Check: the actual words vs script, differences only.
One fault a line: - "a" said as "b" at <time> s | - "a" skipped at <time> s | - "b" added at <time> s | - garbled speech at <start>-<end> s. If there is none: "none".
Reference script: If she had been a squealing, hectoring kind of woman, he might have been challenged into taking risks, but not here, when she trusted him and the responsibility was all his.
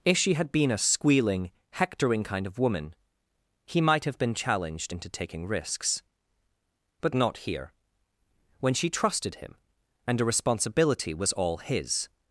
- "the" said as "a" at 10.2 s